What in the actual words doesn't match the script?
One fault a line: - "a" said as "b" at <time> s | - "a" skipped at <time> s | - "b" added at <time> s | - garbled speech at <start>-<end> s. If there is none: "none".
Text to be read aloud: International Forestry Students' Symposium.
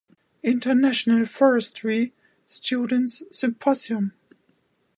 none